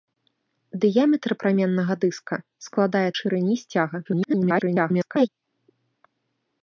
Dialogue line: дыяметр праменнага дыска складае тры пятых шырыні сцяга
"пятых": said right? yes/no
no